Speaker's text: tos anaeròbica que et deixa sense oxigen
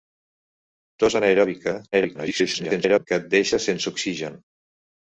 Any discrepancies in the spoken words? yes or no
yes